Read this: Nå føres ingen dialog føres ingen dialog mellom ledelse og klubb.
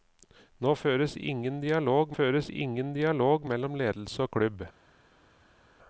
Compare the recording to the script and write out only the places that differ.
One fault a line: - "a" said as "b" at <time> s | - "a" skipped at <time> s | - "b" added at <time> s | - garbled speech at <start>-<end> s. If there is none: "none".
none